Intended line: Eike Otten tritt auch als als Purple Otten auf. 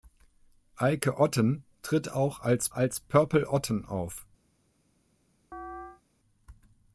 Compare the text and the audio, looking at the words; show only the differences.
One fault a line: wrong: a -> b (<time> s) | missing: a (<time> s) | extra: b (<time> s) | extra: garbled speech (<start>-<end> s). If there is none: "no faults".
no faults